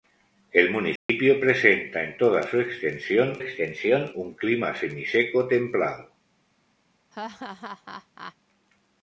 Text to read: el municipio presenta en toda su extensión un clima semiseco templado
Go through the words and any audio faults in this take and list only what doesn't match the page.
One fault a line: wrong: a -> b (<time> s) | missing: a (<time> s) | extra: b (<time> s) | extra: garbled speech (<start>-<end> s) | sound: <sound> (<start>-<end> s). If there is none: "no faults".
sound: dropout (1.0-1.1 s)
extra: extensión (3.4 s)
sound: laugh (7.1-8.4 s)